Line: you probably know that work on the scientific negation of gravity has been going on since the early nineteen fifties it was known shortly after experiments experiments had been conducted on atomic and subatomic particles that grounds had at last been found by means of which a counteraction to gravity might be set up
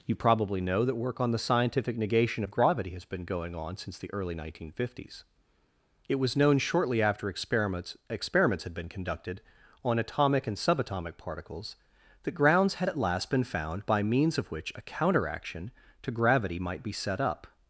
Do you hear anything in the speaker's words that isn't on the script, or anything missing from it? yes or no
no